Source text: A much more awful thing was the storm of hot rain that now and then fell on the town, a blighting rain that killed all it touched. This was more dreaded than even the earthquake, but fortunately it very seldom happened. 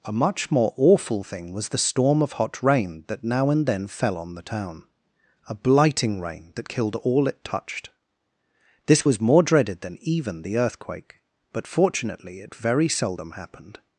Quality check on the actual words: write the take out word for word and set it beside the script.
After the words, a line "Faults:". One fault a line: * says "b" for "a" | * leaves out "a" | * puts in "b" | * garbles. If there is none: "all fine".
A much more awful thing was the storm of hot rain that now and then fell on the town, a blighting rain that killed all it touched. This was more dreaded than even the earthquake, but fortunately it very seldom happened.
Faults:
all fine